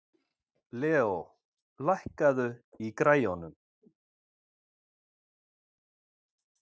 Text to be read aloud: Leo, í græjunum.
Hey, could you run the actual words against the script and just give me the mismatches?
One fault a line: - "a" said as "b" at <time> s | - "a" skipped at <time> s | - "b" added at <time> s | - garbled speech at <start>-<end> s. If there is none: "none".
- "lækkaðu" added at 1.9 s